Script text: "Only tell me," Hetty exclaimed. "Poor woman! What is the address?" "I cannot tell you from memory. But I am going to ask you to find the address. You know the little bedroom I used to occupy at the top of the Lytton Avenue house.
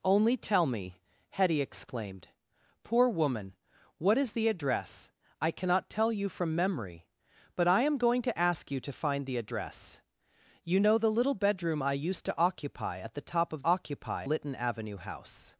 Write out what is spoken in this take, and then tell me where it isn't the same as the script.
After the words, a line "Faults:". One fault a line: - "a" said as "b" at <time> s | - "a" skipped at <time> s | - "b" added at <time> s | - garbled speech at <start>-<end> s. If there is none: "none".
"Only tell me," Hetty exclaimed. "Poor woman! What is the address?" "I cannot tell you from memory. But I am going to ask you to find the address. You know the little bedroom I used to occupy at the top of occupy Lytton Avenue house.
Faults:
- "the" said as "occupy" at 13.6 s